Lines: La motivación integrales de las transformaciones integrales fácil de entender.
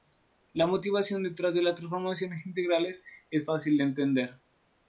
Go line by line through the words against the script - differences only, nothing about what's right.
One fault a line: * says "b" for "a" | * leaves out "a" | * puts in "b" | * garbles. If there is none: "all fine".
* says "detrás" for "integrales"
* puts in "es"